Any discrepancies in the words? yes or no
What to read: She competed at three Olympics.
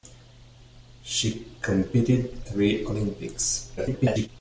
yes